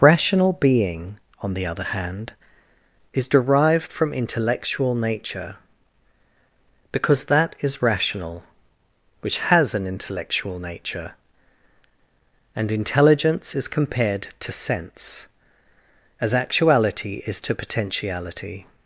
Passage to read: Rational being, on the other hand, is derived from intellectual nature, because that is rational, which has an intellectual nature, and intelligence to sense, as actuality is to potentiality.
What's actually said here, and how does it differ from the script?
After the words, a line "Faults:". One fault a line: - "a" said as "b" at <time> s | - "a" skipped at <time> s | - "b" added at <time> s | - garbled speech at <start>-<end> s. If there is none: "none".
Rational being, on the other hand, is derived from intellectual nature, because that is rational, which has an intellectual nature, and intelligence is compared to sense, as actuality is to potentiality.
Faults:
- "is compared" added at 13.5 s